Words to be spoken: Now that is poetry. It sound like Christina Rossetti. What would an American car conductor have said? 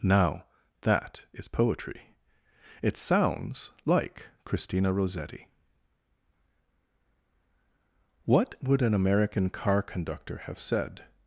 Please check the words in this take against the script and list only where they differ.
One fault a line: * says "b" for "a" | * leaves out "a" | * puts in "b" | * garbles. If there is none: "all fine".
* says "sounds" for "sound"